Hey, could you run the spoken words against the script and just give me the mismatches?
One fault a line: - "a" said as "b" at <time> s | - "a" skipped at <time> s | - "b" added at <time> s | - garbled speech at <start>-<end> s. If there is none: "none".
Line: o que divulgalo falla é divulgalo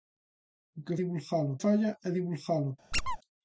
none